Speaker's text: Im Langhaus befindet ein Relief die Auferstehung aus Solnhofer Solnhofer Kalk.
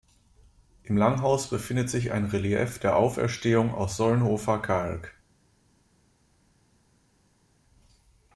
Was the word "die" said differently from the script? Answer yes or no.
yes